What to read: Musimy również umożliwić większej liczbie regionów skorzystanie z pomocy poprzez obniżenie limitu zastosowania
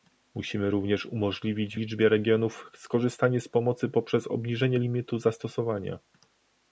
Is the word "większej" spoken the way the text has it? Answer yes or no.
no